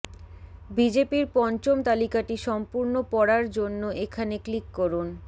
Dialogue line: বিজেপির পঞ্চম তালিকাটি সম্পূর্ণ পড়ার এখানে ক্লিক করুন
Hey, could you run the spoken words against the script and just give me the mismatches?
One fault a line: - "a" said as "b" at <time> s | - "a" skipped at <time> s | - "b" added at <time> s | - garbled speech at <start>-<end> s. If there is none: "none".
- "জন্য" added at 3.6 s